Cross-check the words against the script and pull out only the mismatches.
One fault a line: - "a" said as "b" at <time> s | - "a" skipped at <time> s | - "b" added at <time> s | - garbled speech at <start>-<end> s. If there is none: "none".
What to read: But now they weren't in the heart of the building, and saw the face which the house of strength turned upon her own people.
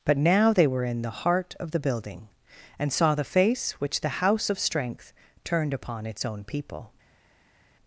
- "weren't" said as "were" at 0.7 s
- "her" said as "its" at 6.1 s